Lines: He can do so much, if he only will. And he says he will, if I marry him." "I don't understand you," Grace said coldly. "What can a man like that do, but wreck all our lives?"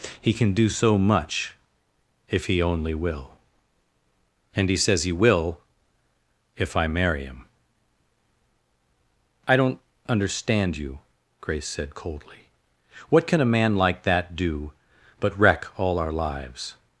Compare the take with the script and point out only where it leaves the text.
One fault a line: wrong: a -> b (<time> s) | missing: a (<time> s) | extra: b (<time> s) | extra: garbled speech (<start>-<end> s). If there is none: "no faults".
no faults